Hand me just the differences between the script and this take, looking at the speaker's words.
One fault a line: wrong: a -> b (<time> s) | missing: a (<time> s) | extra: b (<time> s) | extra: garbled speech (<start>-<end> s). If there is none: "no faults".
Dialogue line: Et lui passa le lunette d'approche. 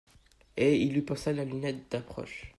extra: il (0.8 s)
wrong: le -> la (1.3 s)